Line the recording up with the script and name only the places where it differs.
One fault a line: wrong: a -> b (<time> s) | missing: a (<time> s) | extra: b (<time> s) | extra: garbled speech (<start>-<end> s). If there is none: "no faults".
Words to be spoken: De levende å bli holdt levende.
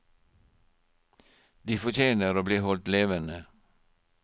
wrong: levende -> fortjener (1.8 s)